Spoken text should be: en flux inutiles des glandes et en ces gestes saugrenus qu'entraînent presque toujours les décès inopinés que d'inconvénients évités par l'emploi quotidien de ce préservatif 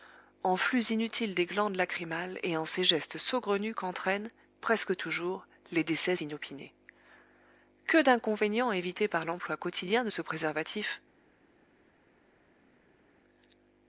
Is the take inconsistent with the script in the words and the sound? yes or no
yes